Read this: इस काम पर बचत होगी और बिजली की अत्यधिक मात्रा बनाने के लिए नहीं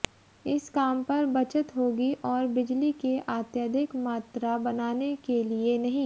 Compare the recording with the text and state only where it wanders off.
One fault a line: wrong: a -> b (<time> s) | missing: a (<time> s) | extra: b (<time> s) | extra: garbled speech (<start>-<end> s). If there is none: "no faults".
no faults